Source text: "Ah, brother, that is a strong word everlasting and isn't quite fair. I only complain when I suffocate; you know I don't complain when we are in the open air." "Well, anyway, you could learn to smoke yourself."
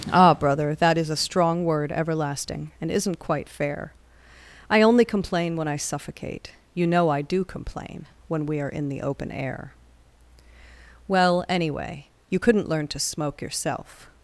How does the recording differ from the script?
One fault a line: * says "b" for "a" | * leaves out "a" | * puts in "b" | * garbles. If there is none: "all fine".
* says "do" for "don't"
* says "couldn't" for "could"